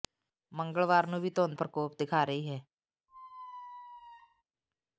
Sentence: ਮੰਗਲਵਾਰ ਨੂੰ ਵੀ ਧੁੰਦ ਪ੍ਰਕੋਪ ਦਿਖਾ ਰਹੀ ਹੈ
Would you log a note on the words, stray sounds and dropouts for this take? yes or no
yes